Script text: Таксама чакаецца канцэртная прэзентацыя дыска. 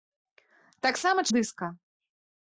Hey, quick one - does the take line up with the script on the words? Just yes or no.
no